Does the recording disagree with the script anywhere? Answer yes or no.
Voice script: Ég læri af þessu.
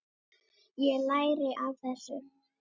no